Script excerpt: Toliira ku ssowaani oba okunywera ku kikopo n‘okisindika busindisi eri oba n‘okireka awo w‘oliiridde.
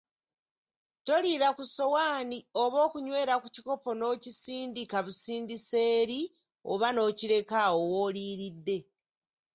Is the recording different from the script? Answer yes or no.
no